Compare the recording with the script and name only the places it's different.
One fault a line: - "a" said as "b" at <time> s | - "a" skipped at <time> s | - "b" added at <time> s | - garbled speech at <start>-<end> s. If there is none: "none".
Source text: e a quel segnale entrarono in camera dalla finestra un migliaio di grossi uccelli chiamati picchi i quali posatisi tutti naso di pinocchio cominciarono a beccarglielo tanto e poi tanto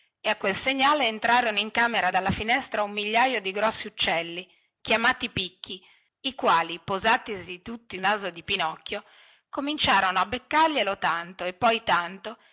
none